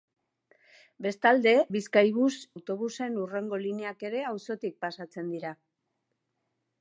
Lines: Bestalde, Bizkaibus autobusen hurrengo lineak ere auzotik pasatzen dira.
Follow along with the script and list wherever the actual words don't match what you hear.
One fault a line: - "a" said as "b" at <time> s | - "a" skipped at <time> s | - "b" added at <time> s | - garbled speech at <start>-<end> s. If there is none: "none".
none